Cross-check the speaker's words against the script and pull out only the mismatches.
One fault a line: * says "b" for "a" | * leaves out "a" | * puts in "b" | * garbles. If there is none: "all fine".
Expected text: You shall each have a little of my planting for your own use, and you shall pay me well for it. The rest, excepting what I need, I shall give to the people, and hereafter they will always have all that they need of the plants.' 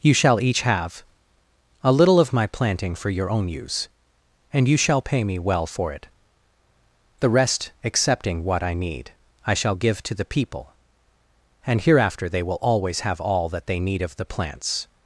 all fine